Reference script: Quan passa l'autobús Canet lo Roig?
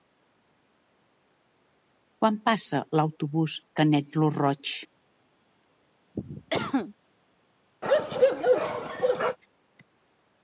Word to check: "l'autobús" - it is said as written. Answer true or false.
true